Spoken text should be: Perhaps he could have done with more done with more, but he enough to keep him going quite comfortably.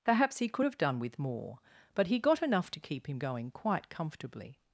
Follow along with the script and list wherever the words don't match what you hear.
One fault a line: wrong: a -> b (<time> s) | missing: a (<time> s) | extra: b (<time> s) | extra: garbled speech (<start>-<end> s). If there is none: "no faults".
missing: done with more (1.6 s)
extra: got (2.2 s)